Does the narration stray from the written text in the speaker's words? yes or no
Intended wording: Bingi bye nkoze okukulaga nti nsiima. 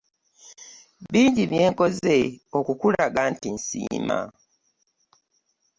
no